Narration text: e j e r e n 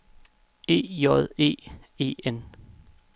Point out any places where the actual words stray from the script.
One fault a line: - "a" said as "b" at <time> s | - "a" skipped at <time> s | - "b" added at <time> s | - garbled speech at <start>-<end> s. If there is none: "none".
- "r" skipped at 1.5 s